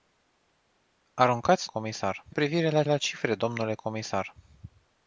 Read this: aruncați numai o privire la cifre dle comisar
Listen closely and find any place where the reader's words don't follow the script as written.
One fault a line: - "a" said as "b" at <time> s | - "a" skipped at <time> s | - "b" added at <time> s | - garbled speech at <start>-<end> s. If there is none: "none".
- "numai" said as "comisar" at 1.6 s
- "la" added at 2.8 s